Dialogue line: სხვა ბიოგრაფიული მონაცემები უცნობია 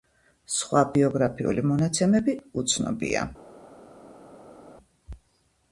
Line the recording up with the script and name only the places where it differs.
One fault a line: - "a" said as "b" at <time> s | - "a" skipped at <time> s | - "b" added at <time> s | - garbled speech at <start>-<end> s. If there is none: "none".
none